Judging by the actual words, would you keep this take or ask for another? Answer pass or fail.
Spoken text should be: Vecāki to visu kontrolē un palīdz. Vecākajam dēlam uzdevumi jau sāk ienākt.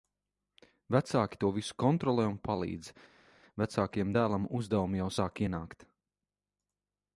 pass